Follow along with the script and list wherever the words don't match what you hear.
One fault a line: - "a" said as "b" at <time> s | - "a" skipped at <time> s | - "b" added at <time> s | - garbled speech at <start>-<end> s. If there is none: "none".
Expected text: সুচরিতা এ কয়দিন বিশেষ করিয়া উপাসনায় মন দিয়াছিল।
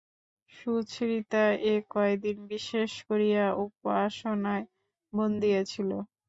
none